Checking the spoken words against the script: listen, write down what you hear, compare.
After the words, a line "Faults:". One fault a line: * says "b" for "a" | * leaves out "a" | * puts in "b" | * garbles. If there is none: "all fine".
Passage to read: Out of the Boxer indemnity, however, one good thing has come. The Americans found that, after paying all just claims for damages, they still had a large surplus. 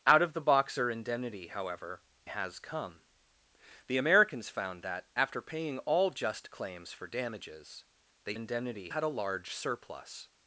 Out of the Boxer indemnity, however, has come. The Americans found that, after paying all just claims for damages, they indemnity had a large surplus.
Faults:
* leaves out "one good thing"
* says "indemnity" for "still"